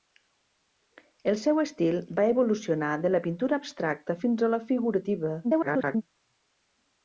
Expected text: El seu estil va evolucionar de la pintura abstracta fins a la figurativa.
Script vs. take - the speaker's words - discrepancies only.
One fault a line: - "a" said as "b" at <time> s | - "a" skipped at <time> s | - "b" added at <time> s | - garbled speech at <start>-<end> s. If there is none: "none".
- garbled speech at 5.4-6.0 s